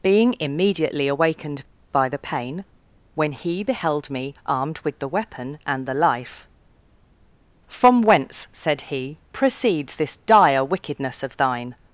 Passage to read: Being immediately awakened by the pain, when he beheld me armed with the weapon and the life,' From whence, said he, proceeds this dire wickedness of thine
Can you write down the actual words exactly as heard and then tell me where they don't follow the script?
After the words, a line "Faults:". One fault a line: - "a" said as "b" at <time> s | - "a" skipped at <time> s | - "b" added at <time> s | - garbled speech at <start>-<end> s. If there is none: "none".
Being immediately awakened by the pain, when he beheld me armed with the weapon and the life,' From whence, said he, proceeds this dire wickedness of thine
Faults:
none